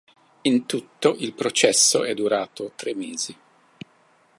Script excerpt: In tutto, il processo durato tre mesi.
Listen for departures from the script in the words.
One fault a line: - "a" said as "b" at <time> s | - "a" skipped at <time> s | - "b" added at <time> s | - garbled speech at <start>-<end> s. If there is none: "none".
- "è" added at 2.0 s